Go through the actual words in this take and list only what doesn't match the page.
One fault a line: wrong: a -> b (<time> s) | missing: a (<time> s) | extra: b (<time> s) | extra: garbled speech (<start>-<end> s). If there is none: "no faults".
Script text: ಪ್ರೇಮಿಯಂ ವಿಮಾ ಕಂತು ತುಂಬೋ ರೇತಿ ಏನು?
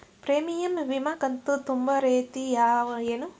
no faults